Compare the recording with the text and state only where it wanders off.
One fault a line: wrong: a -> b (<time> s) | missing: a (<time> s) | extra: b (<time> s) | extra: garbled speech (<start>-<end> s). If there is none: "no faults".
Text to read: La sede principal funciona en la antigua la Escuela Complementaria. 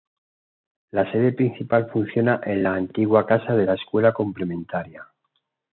extra: casa de (3.2 s)